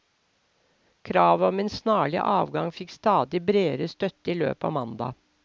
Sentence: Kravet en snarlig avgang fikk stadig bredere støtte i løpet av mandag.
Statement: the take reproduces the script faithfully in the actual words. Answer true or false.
false